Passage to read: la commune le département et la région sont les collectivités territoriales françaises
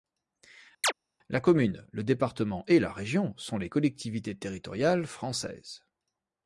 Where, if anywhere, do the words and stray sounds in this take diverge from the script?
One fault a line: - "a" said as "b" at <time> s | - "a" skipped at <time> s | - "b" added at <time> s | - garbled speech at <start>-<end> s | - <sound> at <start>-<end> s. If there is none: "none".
- chirp at 0.8-0.9 s